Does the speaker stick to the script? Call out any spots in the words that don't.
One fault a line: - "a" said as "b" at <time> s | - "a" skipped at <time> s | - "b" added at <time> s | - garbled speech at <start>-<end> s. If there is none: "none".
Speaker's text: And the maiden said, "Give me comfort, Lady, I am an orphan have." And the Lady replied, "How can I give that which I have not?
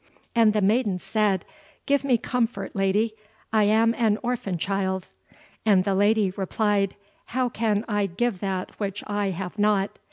- "have" said as "child" at 4.6 s